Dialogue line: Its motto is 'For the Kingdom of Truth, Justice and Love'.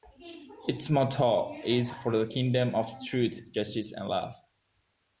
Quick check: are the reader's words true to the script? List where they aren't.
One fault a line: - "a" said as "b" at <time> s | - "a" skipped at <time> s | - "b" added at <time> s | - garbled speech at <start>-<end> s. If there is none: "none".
none